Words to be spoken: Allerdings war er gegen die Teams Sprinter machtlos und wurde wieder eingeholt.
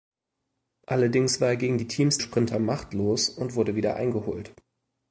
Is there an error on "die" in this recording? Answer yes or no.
no